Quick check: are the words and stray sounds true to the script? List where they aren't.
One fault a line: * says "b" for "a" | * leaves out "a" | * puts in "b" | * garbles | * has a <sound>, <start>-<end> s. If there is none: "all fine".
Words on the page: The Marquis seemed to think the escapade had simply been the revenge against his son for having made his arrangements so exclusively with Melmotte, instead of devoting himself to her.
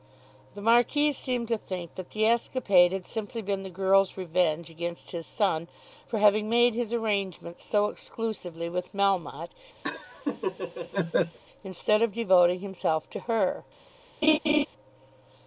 * puts in "that"
* puts in "girl's"
* has a laugh, 9.8-11.4 s
* has a laugh, 14.2-14.7 s